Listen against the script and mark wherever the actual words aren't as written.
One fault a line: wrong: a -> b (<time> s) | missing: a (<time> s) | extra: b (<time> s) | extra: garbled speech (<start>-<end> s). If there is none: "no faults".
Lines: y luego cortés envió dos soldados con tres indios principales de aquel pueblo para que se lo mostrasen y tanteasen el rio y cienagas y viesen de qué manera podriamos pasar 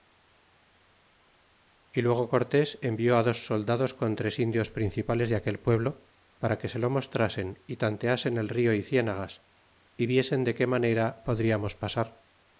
no faults